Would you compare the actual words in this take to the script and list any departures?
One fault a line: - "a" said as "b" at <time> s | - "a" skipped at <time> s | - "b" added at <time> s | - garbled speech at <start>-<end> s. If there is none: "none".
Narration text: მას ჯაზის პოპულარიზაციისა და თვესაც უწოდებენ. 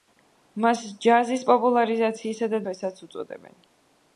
none